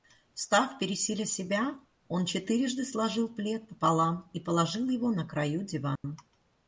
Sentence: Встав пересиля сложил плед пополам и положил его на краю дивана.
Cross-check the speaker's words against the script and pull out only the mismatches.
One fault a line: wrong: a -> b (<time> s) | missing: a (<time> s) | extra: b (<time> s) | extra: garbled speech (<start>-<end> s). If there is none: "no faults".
extra: себя он четырежды (1.3 s)